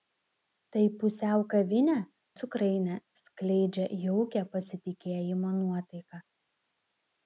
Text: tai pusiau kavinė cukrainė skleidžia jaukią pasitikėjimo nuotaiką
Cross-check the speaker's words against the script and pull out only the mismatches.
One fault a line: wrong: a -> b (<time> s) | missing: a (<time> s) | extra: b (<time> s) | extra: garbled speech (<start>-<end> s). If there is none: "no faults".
no faults